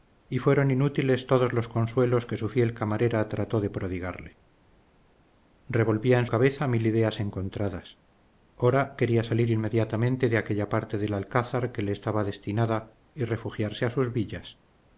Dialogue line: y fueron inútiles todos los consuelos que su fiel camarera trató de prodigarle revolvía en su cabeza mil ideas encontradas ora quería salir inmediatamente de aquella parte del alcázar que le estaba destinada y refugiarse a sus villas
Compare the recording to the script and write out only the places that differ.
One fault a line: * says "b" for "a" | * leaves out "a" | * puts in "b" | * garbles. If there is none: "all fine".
* leaves out "su"